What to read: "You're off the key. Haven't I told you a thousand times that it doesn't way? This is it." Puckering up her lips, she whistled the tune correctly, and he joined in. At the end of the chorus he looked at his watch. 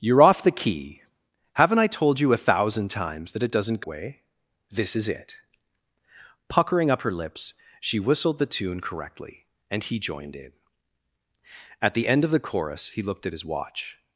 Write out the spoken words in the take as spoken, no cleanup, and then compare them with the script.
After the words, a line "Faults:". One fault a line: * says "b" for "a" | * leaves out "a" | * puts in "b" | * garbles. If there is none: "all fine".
"You're off the key. Haven't I told you a thousand times that it doesn't way? This is it." Puckering up her lips, she whistled the tune correctly, and he joined in. At the end of the chorus he looked at his watch.
Faults:
all fine